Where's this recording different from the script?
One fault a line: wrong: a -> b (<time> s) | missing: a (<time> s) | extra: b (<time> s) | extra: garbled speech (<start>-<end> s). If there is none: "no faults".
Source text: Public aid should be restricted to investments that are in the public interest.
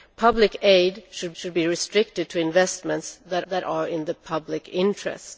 extra: should (1.3 s)
extra: that (3.5 s)